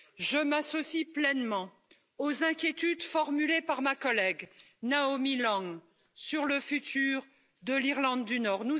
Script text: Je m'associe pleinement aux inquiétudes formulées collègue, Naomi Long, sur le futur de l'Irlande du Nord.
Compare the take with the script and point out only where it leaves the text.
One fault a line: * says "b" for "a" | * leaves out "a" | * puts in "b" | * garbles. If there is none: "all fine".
* puts in "par ma"